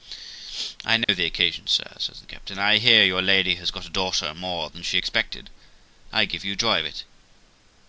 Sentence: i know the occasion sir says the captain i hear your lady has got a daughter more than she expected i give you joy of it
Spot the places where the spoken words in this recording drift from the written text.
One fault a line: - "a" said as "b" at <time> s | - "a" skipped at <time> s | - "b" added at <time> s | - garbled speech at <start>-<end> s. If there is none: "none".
none